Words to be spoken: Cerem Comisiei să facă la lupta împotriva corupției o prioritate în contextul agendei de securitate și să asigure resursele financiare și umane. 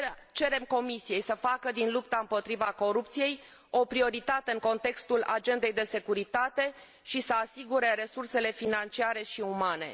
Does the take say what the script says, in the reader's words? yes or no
no